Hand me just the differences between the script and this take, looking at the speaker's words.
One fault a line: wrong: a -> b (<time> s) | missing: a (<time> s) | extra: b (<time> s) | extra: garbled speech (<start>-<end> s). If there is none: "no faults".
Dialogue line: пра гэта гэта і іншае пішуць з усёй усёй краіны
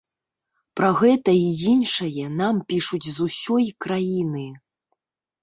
missing: гэта (1.4 s)
extra: нам (2.4 s)
missing: усёй (3.7 s)